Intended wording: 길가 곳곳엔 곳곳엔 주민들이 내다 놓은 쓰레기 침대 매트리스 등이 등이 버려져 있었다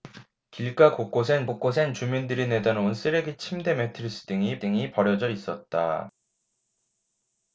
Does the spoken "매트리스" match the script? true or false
true